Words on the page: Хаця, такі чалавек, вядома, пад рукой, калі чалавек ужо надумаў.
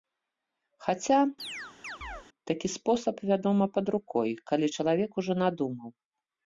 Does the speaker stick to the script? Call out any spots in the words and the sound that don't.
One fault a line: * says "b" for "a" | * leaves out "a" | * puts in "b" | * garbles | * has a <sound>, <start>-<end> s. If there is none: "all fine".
* has a chirp, 1.4-2.3 s
* says "спосаб" for "чалавек"